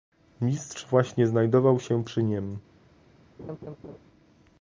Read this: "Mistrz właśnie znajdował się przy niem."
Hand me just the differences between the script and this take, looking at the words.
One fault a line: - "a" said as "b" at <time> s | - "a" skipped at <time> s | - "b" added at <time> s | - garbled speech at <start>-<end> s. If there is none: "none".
none